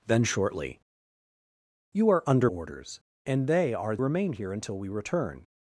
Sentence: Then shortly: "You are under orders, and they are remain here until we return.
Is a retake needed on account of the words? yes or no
no